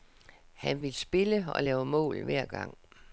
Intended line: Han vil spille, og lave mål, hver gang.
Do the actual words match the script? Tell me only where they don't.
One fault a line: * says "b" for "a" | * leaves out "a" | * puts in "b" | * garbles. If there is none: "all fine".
all fine